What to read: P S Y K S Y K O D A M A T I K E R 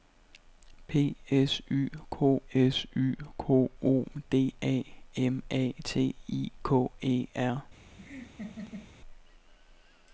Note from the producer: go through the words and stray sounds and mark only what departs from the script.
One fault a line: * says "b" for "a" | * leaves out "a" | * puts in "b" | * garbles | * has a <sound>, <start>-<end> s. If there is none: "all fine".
* has a laugh, 8.0-8.9 s